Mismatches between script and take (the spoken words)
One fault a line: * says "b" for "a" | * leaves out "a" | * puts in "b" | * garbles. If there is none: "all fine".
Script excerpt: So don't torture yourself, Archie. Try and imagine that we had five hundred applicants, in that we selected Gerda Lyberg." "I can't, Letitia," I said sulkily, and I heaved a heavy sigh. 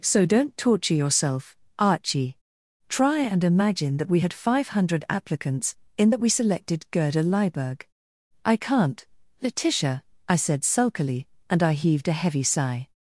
all fine